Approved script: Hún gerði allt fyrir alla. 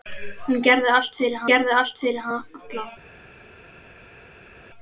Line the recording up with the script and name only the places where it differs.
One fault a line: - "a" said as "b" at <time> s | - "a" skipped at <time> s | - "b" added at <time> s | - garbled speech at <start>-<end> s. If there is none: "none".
- "gerði allt fyrir" added at 1.5 s